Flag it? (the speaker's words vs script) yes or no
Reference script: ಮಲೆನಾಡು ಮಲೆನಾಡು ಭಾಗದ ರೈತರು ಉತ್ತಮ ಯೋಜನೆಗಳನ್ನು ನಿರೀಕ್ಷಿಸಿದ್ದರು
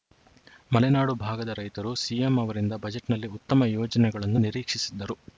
yes